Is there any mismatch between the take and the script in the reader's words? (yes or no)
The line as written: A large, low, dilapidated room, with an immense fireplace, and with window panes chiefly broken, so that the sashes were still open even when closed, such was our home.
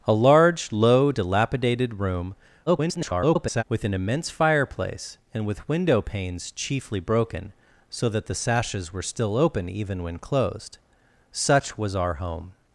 yes